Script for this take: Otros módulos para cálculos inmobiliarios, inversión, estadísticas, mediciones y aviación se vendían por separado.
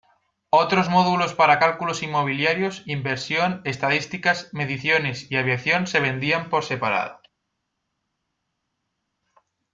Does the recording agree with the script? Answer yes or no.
yes